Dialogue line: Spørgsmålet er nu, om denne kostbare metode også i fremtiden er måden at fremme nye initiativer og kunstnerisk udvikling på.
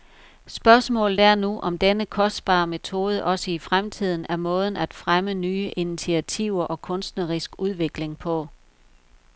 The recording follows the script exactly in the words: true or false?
true